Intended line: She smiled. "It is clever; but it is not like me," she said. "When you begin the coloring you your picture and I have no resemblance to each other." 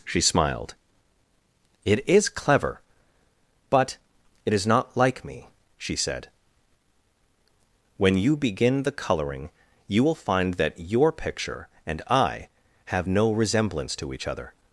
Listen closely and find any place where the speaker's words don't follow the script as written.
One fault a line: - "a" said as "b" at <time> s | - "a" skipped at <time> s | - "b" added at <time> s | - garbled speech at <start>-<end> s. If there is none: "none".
- "will find that" added at 10.0 s